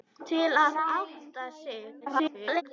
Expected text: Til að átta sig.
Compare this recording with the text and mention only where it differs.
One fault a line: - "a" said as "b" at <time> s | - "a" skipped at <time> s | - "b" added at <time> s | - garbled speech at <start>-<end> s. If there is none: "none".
- garbled speech at 2.0-2.6 s